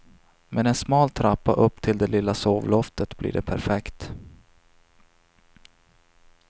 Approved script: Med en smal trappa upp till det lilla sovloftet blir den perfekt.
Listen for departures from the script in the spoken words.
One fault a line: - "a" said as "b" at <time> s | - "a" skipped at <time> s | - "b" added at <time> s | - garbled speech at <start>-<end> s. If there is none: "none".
- "den" said as "det" at 3.3 s